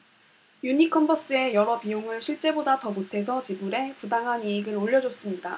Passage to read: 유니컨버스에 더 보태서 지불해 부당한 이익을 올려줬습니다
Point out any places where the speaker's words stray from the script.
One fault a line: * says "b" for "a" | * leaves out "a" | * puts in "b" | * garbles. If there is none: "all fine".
* puts in "여러 비용을 실제보다"